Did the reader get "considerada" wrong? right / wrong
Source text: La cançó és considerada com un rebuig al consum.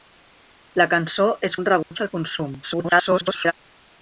wrong